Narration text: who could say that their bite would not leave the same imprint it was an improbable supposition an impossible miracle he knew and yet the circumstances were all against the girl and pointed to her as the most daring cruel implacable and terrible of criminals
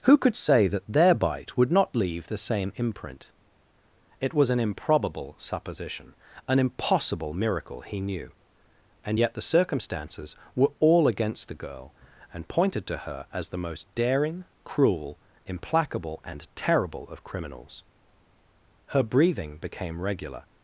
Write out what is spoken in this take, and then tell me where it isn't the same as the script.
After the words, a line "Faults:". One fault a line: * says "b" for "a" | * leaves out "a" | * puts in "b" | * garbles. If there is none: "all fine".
who could say that their bite would not leave the same imprint it was an improbable supposition an impossible miracle he knew and yet the circumstances were all against the girl and pointed to her as the most daring cruel implacable and terrible of criminals her breathing became regular
Faults:
* puts in "her breathing became regular"